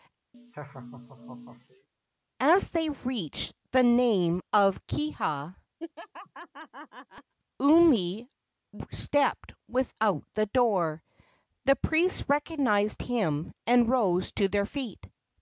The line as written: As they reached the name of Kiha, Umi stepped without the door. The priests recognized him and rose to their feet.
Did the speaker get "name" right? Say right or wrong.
right